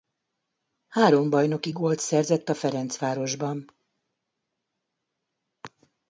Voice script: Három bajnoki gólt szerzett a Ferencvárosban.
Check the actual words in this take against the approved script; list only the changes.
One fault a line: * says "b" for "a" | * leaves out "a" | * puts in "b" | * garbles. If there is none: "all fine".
all fine